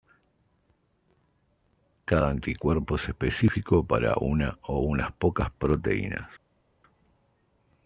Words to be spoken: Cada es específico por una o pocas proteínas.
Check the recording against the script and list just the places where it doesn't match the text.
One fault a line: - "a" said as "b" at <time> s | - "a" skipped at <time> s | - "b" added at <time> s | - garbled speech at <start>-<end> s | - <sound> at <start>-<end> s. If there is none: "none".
- "anticuerpo" added at 2.3 s
- "por" said as "para" at 3.8 s
- "unas" added at 4.8 s